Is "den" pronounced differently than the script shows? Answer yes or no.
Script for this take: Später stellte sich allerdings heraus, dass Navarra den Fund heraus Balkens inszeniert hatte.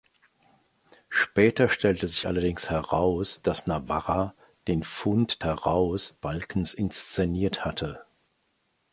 no